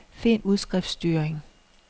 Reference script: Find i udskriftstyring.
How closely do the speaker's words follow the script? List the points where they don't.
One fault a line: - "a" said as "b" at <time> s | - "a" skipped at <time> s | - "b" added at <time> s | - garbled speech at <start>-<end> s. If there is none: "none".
none